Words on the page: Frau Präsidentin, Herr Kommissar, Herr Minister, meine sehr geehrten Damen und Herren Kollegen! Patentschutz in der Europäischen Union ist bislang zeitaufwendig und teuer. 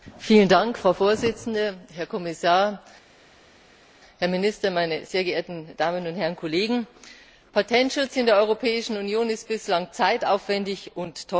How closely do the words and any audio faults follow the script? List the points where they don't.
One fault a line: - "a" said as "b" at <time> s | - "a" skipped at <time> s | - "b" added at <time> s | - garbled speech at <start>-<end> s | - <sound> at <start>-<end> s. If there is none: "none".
none